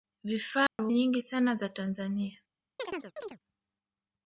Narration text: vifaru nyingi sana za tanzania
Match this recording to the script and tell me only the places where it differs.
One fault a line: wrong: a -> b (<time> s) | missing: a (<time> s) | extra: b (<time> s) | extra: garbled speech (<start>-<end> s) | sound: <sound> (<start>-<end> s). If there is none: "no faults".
sound: dropout (0.7-0.8 s)
sound: chirp (2.8-3.4 s)